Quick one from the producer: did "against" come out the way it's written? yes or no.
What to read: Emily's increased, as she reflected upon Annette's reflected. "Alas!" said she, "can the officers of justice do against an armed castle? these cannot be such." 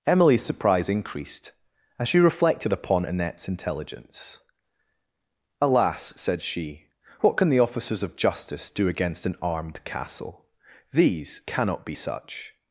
yes